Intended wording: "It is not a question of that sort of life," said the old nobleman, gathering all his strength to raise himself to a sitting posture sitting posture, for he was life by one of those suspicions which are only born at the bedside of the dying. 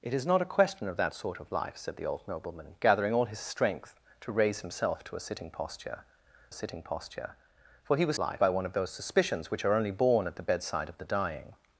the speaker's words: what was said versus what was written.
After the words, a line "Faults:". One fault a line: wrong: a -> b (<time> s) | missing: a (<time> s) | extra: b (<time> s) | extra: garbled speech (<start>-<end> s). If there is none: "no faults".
"It is not a question of that sort of life," said the old nobleman, gathering all his strength to raise himself to a sitting posture sitting posture, for he was life by one of those suspicions which are only born at the bedside of the dying.
Faults:
no faults